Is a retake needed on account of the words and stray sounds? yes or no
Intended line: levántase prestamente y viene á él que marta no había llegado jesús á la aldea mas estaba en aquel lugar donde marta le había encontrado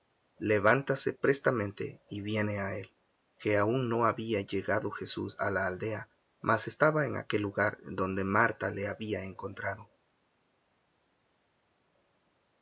yes